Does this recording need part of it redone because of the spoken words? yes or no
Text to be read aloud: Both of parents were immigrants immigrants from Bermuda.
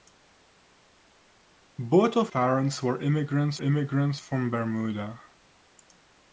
no